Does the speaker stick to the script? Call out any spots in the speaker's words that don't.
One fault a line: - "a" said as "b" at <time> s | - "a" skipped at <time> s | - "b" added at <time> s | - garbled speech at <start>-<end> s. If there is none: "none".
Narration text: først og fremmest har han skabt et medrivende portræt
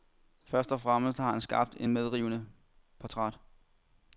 none